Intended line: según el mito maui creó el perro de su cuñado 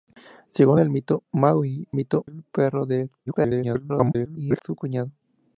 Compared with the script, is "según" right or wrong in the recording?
right